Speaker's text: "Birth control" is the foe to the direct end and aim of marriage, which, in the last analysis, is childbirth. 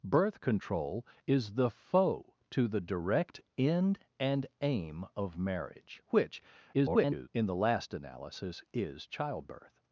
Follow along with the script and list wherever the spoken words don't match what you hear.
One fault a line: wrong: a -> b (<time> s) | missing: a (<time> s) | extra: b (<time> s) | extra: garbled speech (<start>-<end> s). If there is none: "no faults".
extra: garbled speech (6.7-7.3 s)